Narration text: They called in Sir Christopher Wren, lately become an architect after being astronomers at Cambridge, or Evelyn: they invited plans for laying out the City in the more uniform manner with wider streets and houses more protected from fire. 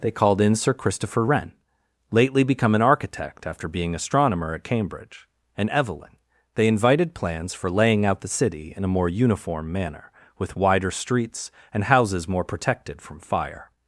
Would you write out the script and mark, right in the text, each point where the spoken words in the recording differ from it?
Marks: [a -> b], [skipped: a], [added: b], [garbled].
They called in Sir Christopher Wren, lately become an architect after being [astronomers -> astronomer] at Cambridge, [or -> and] Evelyn: they invited plans for laying out the City in [the -> a] more uniform manner with wider streets and houses more protected from fire.